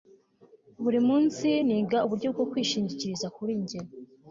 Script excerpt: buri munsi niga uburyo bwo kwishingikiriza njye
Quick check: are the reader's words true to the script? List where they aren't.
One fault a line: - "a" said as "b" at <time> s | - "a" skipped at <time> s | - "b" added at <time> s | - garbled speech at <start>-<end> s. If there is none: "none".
- "kuri" added at 3.4 s